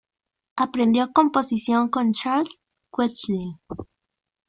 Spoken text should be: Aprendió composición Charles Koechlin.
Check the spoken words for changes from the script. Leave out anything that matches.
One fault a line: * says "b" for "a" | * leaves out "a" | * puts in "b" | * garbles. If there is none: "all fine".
* puts in "con"